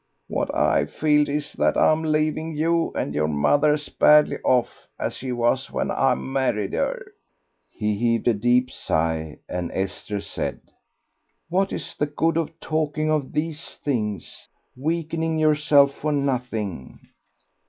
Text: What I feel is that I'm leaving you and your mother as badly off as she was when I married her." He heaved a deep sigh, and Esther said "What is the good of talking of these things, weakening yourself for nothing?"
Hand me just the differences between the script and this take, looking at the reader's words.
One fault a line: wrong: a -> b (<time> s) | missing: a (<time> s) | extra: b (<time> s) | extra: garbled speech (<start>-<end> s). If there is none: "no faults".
no faults